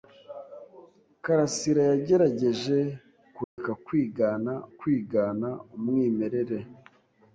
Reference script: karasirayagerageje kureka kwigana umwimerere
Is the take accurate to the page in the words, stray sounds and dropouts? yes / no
no